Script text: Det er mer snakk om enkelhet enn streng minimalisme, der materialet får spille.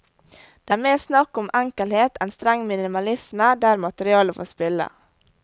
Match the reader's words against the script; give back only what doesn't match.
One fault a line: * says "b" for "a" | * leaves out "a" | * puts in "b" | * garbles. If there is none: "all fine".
all fine